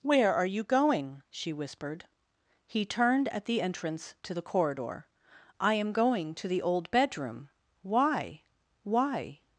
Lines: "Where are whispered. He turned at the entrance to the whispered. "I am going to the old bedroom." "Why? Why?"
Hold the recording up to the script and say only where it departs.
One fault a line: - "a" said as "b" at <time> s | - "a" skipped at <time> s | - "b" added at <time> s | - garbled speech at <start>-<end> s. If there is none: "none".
- "you going she" added at 0.5 s
- "whispered" said as "corridor" at 4.4 s